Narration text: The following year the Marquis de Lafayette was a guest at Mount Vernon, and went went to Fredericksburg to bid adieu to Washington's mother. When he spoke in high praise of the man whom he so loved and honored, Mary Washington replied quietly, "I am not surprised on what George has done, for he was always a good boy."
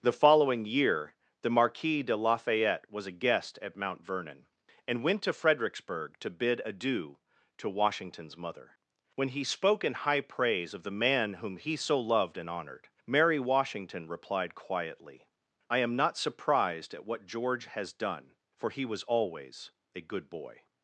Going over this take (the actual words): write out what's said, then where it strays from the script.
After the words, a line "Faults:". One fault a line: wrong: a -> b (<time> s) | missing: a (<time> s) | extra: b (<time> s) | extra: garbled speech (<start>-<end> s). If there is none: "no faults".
The following year the Marquis de Lafayette was a guest at Mount Vernon, and went to Fredericksburg to bid adieu to Washington's mother. When he spoke in high praise of the man whom he so loved and honored, Mary Washington replied quietly, "I am not surprised at what George has done, for he was always a good boy."
Faults:
missing: went (5.2 s)
wrong: on -> at (16.9 s)